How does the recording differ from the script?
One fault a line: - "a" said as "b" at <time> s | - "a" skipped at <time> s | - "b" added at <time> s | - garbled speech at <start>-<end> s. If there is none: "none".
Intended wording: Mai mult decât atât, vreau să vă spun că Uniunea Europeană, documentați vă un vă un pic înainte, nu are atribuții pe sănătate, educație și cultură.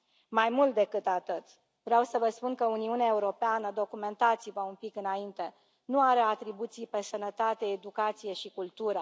- "vă un" skipped at 4.7 s